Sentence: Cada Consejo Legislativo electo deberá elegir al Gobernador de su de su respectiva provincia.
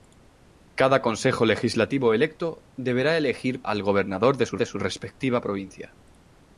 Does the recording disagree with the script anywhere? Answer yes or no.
no